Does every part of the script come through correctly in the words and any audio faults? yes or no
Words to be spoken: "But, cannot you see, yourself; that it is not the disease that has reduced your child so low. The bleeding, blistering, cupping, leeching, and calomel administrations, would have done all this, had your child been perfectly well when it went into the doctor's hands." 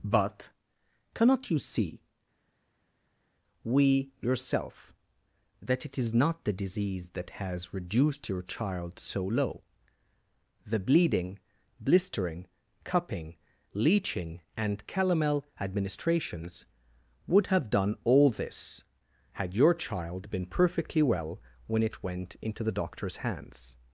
no